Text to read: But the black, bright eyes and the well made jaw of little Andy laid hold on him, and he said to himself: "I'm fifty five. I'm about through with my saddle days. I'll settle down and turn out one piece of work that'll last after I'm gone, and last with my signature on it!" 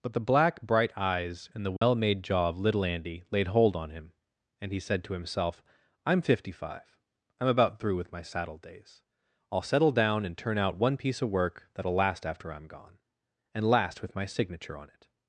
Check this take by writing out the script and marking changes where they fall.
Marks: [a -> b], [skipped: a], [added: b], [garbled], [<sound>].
But the black, bright eyes and the well [dropout] made jaw of little Andy laid hold on him, and he said to himself: "I'm fifty five. I'm about through with my saddle days. I'll settle down and turn out one piece of work that'll last after I'm gone, and last with my signature on it!"